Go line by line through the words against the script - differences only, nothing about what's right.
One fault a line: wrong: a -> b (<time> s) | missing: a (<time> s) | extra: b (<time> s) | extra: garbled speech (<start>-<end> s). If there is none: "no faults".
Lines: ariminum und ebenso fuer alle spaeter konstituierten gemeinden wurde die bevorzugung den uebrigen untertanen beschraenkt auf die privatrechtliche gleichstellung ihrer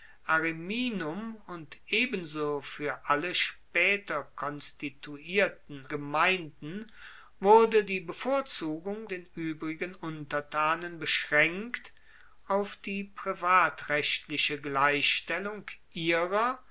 no faults